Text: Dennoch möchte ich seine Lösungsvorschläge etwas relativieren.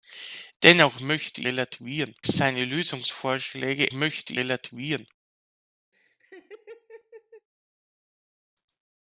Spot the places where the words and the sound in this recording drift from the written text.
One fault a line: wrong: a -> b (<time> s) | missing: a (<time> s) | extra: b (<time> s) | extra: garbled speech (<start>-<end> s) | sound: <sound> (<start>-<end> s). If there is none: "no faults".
wrong: ich -> relativieren (1.4 s)
wrong: etwas -> möchte (3.9 s)
sound: laugh (5.9-7.5 s)